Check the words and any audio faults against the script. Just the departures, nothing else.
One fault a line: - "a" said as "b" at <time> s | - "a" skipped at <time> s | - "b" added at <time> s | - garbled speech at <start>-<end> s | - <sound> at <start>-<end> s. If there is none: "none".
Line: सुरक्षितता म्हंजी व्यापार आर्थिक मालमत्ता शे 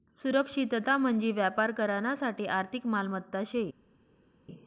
- "करानासाठे" added at 1.7 s